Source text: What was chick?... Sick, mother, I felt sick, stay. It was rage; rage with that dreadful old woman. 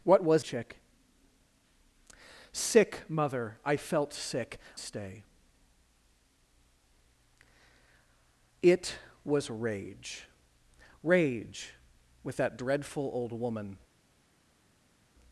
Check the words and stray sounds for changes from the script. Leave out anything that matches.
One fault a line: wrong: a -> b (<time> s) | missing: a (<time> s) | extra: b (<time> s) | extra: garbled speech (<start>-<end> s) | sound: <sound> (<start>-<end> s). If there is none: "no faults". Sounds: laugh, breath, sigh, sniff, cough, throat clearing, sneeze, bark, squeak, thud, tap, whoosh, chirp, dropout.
no faults